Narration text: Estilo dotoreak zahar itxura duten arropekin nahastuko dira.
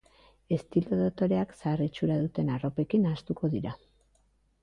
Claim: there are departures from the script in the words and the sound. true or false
false